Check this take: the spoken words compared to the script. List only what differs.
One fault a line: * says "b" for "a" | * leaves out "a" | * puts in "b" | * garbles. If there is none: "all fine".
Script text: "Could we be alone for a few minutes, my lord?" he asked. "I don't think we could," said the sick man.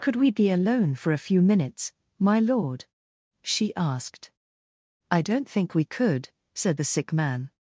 * says "she" for "he"